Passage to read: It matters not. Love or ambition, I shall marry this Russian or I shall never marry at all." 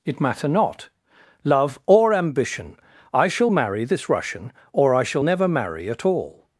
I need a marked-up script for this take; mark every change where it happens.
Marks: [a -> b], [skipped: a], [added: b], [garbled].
It [matters -> matter] not. Love or ambition, I shall marry this Russian or I shall never marry at all."